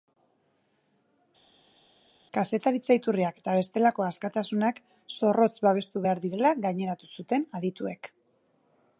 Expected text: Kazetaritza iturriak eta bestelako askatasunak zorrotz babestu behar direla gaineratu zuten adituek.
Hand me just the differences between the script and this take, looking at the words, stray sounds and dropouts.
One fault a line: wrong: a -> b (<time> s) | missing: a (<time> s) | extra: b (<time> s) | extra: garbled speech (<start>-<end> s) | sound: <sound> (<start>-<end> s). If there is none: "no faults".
no faults